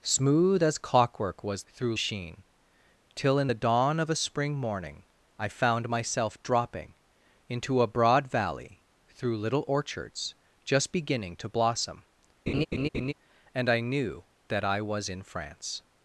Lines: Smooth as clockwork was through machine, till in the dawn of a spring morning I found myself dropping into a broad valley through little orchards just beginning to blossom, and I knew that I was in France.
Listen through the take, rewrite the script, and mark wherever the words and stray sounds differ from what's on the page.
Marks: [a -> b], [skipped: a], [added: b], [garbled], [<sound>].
Smooth as clockwork was through machine, till in the dawn of a spring morning I found myself dropping into a broad valley through little orchards just beginning to blossom, [laugh] and I knew that I was in France.